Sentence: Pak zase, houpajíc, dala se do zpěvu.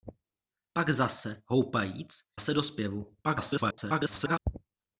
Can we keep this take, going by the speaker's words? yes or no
no